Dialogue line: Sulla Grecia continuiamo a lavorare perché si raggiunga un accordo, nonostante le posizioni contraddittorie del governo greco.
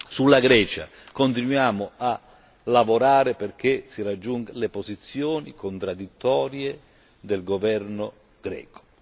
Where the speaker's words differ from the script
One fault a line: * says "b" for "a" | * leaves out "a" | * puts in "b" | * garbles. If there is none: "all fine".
* leaves out "un accordo nonostante"